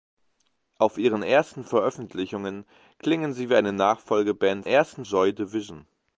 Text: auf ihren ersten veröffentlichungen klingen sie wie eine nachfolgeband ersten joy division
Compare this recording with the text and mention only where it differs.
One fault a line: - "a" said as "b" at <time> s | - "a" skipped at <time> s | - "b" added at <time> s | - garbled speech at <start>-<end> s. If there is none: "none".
none